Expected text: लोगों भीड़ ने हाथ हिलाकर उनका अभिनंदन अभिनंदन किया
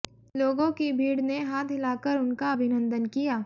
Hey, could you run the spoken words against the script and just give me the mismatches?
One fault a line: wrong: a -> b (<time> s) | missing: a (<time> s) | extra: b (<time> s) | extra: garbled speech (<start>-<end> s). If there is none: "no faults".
extra: की (0.7 s)
missing: अभिनंदन (3.0 s)